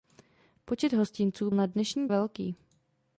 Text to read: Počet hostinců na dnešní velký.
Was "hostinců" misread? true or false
false